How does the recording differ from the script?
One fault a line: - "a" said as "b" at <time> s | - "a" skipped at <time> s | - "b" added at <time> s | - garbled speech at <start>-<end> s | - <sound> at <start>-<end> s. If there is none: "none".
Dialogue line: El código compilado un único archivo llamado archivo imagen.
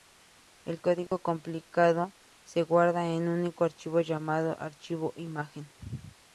- dropout at 1.1-1.1 s
- "se guarda en" added at 2.4 s